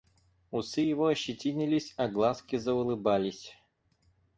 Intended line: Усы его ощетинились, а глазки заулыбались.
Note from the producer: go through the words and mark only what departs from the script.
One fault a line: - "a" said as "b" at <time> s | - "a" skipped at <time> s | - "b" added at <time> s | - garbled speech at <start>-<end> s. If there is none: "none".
none